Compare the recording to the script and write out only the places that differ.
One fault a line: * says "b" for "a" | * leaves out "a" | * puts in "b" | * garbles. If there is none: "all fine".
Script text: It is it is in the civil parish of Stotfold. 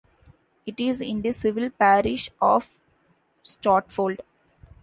* leaves out "it is"